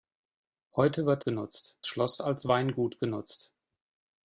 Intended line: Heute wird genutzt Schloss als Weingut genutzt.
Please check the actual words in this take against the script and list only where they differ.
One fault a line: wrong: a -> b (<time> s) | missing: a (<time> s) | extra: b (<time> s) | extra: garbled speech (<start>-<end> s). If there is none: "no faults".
no faults